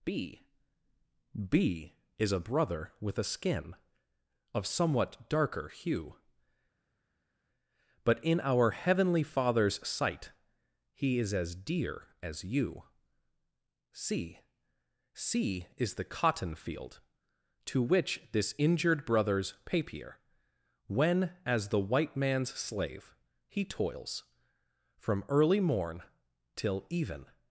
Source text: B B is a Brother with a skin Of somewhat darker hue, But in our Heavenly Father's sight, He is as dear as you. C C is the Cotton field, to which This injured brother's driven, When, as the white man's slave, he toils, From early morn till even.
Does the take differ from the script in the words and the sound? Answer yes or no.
yes